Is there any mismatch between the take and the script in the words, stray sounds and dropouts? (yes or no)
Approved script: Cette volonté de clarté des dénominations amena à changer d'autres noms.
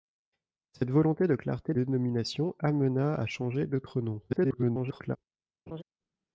yes